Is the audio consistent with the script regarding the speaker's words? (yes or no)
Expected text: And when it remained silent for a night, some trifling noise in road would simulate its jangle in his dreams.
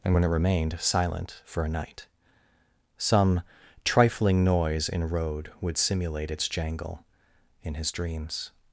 yes